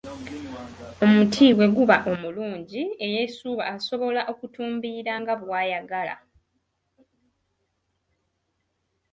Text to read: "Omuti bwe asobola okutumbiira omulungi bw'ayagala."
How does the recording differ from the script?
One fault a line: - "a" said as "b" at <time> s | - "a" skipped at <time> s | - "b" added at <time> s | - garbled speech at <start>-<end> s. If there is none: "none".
- "guba omulungi eyeesuuba" added at 1.8 s
- "omulungi" said as "nga" at 5.2 s